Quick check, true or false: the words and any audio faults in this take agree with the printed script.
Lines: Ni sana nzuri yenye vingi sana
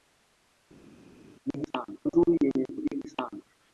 true